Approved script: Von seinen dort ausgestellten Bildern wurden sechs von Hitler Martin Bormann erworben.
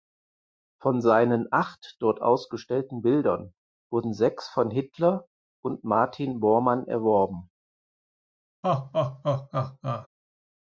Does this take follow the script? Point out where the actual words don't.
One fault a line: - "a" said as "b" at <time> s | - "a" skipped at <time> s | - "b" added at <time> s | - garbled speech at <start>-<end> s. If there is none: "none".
- "acht" added at 1.5 s
- "und" added at 5.6 s